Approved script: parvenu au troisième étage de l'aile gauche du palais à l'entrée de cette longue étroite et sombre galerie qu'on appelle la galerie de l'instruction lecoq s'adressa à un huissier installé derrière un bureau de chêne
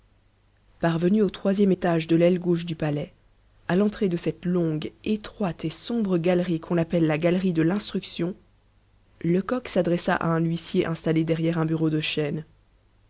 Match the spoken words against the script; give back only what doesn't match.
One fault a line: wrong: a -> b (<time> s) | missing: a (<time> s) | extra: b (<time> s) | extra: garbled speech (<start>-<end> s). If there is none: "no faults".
no faults